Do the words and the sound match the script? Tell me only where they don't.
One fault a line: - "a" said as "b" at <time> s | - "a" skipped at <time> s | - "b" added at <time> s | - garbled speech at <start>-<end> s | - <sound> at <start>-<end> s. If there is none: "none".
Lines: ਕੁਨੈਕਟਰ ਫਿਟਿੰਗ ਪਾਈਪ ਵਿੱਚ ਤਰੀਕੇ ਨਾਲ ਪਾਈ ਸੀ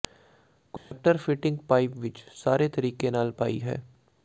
- dropout at 0.8-0.9 s
- "ਸਾਰੇ" added at 2.4 s
- "ਸੀ" said as "ਹੈ" at 3.6 s